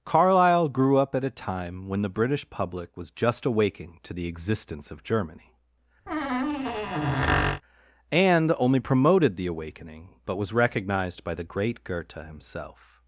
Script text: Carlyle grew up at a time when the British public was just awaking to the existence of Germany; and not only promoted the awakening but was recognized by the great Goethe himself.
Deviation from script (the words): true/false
true